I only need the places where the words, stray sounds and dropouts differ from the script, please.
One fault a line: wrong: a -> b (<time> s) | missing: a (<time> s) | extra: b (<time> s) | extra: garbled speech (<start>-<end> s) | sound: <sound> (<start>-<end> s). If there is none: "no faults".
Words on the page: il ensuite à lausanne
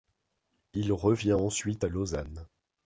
extra: revient (0.9 s)